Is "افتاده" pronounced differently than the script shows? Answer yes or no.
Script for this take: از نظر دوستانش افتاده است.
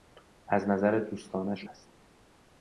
yes